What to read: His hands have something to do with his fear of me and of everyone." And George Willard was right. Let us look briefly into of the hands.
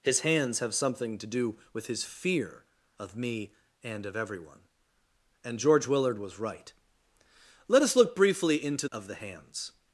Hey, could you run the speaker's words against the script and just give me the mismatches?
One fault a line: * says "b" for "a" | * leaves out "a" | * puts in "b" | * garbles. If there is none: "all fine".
all fine